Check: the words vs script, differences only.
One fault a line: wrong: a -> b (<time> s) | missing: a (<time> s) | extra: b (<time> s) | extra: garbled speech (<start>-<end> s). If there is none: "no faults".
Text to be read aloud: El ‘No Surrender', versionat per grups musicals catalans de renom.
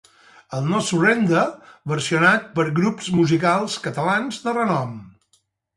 no faults